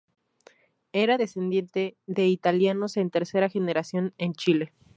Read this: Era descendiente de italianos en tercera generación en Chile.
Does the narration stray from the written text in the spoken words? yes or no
no